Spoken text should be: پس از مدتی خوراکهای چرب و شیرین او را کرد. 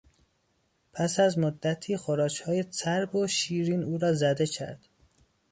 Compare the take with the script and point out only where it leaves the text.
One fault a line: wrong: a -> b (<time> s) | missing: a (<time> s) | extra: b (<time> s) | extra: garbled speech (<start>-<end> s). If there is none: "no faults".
extra: زده (4.1 s)